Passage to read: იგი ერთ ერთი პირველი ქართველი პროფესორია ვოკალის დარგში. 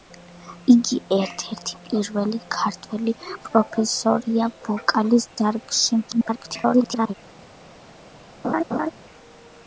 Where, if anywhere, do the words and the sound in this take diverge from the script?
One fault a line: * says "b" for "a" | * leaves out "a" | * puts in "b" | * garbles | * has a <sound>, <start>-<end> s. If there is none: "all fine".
* garbles
* has a laugh, 8.4-8.9 s